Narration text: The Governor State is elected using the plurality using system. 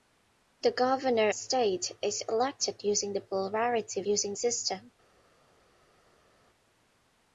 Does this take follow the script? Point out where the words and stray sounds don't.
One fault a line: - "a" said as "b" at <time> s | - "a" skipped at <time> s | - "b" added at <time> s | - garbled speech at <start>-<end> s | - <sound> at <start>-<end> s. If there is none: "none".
none